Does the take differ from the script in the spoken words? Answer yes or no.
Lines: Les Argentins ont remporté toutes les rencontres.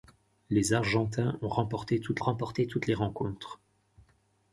yes